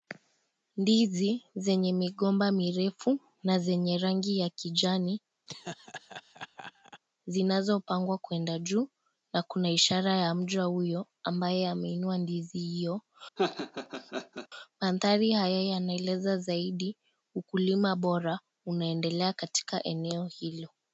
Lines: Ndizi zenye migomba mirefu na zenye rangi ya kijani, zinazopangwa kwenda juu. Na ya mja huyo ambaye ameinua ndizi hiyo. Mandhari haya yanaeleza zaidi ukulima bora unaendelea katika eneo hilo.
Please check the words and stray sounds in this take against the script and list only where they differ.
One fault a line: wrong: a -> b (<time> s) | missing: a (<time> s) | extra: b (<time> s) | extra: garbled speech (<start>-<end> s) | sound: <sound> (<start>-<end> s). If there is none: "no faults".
sound: laugh (5.5-7.0 s)
extra: kuna ishara (9.4 s)
sound: laugh (13.4-14.5 s)